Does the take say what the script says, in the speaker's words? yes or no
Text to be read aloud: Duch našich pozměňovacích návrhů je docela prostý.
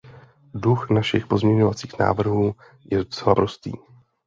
yes